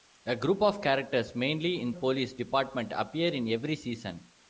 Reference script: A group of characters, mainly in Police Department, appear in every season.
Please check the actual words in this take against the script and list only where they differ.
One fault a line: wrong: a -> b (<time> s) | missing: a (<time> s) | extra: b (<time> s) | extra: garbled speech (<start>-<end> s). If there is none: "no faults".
no faults